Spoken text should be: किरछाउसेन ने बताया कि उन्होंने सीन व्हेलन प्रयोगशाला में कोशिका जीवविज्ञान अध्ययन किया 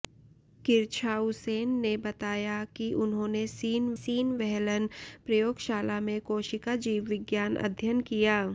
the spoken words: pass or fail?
fail